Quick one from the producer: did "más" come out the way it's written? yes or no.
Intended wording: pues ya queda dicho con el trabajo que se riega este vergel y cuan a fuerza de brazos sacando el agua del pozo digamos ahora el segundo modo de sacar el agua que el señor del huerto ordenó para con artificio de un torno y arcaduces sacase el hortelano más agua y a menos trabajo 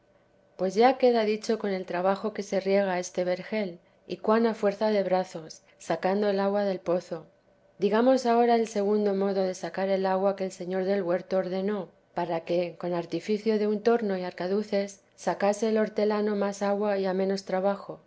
yes